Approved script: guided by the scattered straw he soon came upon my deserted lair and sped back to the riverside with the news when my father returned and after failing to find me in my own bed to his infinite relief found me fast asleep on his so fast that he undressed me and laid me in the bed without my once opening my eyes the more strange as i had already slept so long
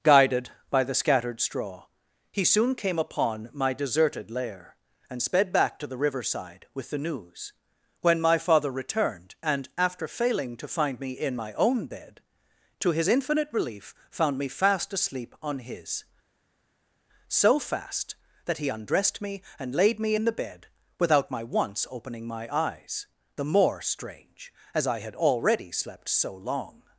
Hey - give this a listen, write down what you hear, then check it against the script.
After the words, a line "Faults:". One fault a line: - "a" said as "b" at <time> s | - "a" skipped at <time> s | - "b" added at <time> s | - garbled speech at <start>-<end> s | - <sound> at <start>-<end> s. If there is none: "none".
guided by the scattered straw he soon came upon my deserted lair and sped back to the riverside with the news when my father returned and after failing to find me in my own bed to his infinite relief found me fast asleep on his so fast that he undressed me and laid me in the bed without my once opening my eyes the more strange as i had already slept so long
Faults:
none